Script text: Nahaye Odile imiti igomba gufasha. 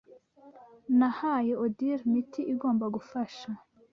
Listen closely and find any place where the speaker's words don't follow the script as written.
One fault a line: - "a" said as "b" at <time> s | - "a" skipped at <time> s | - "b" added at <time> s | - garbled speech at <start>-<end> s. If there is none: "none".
none